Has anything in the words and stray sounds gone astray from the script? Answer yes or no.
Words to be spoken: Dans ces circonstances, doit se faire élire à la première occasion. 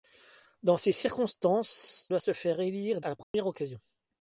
yes